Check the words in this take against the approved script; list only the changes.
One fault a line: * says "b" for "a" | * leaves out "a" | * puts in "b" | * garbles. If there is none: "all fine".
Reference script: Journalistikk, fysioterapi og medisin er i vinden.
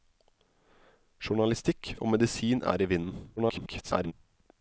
* leaves out "fysioterapi"
* garbles